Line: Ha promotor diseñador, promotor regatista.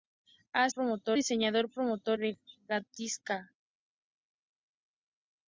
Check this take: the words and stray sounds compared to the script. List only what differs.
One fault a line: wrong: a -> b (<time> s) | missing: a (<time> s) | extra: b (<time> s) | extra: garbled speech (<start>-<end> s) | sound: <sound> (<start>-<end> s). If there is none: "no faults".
no faults